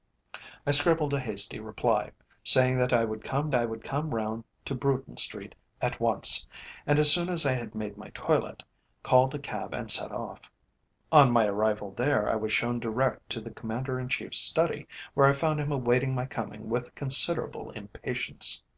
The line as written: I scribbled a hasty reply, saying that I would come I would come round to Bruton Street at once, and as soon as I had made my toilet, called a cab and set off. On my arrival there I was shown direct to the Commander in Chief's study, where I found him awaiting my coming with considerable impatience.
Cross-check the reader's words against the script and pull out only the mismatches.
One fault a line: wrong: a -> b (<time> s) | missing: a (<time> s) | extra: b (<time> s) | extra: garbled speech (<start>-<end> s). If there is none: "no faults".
no faults